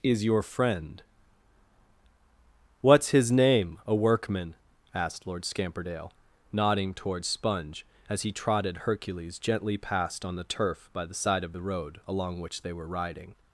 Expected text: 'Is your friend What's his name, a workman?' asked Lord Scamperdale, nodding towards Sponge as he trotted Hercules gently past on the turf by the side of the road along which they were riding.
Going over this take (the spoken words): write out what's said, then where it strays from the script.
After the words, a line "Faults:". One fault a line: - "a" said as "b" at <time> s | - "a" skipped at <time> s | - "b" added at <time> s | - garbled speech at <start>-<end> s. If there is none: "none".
'Is your friend What's his name, a workman?' asked Lord Scamperdale, nodding towards Sponge as he trotted Hercules gently past on the turf by the side of the road along which they were riding.
Faults:
none